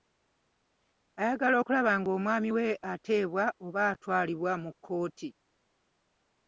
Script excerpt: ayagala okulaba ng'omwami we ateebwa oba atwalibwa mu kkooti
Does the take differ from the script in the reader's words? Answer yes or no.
no